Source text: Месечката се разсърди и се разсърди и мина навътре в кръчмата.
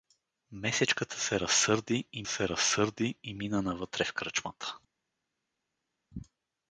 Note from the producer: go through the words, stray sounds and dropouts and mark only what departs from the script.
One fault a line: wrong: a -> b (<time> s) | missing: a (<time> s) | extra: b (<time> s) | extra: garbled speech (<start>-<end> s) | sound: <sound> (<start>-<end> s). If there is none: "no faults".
no faults